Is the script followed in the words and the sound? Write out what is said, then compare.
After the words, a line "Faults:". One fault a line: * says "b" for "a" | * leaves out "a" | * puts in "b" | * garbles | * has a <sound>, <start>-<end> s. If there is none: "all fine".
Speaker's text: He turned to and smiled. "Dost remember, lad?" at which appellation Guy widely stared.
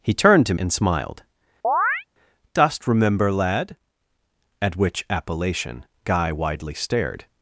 He turned to and smiled. "Dost remember, lad?" at which appellation Guy widely stared.
Faults:
* has a chirp, 1.6-2.0 s